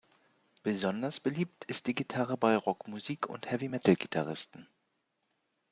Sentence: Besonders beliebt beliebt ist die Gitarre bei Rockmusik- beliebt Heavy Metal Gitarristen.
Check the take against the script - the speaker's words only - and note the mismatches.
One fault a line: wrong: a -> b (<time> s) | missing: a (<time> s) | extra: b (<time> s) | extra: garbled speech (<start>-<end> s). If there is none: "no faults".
missing: beliebt (1.6 s)
wrong: beliebt -> und (3.3 s)